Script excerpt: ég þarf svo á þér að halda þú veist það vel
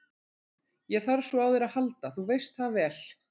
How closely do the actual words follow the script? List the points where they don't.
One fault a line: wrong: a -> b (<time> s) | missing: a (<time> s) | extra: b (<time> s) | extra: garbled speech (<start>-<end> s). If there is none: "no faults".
no faults